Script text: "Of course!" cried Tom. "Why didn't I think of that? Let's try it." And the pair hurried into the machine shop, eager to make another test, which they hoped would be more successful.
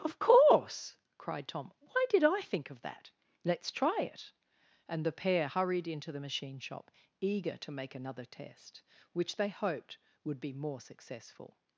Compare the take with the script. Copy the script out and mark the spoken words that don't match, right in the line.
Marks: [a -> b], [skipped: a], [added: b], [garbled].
"Of course!" cried Tom. "Why [didn't -> did] I think of that? Let's try it." And the pair hurried into the machine shop, eager to make another test, which they hoped would be more successful.